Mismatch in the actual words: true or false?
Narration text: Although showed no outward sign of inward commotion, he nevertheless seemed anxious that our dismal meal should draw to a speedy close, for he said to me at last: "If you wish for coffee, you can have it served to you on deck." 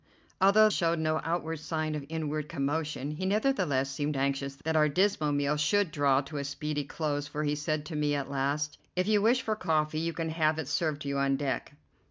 false